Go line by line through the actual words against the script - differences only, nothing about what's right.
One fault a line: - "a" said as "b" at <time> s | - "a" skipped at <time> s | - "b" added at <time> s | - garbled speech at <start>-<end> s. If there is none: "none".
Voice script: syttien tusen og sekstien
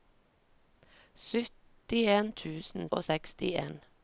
none